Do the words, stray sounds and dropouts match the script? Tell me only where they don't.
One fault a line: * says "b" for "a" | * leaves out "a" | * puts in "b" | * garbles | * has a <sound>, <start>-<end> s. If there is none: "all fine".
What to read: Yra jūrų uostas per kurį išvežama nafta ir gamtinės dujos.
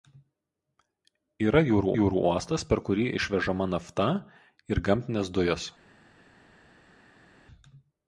* puts in "jūrų"